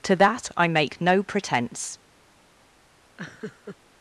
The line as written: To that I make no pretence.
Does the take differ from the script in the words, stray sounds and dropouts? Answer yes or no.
yes